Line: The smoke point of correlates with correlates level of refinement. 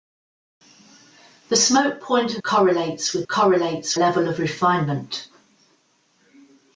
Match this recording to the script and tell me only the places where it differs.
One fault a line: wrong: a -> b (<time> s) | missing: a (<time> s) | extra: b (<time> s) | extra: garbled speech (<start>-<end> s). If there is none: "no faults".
no faults